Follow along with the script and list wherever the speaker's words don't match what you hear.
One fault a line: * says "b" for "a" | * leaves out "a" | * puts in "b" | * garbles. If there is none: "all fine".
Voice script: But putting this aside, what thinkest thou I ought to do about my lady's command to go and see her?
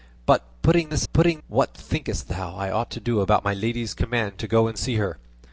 * says "putting" for "aside"